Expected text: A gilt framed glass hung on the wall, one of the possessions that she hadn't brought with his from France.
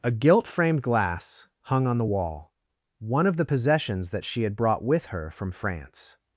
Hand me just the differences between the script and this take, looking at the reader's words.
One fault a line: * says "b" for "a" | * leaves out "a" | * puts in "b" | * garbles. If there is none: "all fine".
* says "had" for "hadn't"
* says "her" for "his"